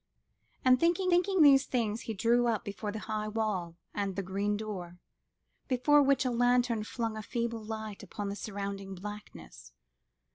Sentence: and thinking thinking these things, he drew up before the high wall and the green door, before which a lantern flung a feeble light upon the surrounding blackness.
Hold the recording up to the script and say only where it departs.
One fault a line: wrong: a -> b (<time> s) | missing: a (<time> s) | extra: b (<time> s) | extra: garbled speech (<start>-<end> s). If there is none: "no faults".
no faults